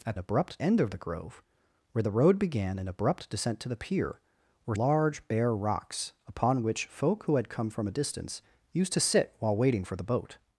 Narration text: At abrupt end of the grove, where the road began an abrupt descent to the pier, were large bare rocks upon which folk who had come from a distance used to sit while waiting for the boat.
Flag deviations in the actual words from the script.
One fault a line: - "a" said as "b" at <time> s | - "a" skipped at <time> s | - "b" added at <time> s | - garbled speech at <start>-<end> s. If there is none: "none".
none